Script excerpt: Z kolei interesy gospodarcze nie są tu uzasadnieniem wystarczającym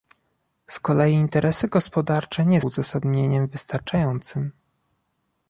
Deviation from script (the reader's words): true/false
true